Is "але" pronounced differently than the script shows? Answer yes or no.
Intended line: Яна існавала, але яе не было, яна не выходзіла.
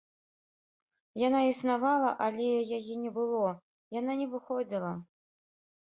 no